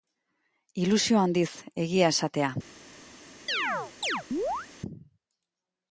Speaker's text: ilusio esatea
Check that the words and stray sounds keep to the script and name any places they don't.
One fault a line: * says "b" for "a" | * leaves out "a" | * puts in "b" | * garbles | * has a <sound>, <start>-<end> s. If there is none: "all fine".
* puts in "handiz egia"
* has a chirp, 3.5-4.7 s